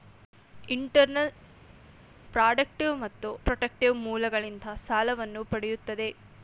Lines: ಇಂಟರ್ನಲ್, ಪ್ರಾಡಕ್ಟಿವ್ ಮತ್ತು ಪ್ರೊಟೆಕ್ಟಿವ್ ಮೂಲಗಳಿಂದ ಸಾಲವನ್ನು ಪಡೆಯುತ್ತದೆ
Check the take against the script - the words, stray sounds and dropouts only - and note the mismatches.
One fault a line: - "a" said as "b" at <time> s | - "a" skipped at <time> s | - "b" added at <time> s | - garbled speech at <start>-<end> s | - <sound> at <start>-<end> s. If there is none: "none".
none